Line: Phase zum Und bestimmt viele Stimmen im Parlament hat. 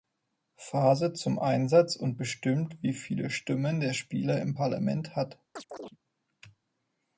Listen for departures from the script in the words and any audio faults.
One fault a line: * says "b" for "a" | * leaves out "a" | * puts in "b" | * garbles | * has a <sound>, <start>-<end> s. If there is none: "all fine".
* puts in "Einsatz"
* puts in "wie"
* puts in "der Spieler"
* has a chirp, 5.6-6.0 s